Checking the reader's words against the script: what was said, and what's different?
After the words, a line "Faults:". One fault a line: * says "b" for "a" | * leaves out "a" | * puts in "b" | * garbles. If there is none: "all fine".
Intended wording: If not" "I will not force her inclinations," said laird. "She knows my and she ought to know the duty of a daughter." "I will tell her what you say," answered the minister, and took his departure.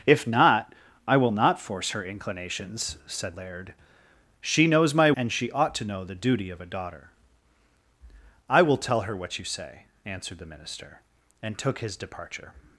If not" "I will not force her inclinations," said laird. "She knows my and she ought to know the duty of a daughter." "I will tell her what you say," answered the minister, and took his departure.
Faults:
all fine